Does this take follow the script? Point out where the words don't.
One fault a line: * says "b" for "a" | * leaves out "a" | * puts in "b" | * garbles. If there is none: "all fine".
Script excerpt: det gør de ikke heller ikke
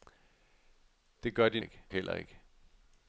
all fine